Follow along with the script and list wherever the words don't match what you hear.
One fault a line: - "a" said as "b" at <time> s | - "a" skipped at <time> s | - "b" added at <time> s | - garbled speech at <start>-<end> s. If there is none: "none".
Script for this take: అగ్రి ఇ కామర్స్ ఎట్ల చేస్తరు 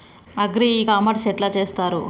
none